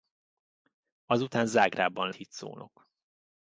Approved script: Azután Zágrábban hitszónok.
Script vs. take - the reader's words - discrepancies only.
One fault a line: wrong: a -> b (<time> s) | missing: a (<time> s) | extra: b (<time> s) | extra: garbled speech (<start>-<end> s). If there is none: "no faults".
no faults